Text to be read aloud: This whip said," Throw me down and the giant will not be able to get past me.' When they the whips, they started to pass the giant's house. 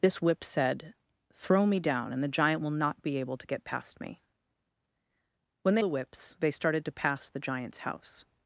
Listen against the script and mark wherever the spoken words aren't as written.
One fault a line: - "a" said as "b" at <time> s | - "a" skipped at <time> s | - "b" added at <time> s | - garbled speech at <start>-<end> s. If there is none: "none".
none